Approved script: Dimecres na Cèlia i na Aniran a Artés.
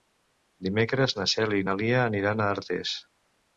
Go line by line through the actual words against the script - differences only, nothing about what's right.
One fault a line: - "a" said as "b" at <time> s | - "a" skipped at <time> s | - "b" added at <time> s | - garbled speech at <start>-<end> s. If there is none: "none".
- "Lia" added at 1.8 s